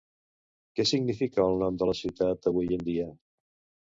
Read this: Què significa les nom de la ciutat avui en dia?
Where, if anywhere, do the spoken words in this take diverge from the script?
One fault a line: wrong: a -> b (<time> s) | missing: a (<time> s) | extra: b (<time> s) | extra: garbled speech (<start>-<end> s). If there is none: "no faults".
wrong: les -> el (1.5 s)